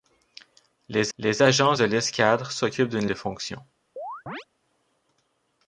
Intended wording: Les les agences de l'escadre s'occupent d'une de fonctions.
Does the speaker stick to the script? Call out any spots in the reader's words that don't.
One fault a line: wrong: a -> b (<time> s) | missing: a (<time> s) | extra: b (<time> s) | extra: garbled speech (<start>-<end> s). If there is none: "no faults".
no faults